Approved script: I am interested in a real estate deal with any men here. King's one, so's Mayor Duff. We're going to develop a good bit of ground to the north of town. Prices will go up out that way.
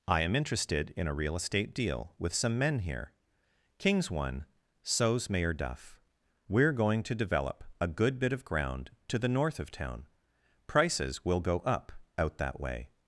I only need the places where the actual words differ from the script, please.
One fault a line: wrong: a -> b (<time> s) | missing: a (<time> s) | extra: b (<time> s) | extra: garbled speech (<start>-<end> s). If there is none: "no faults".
wrong: any -> some (2.3 s)